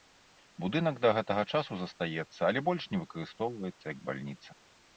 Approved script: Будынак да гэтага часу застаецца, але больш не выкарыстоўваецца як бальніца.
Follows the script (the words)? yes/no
yes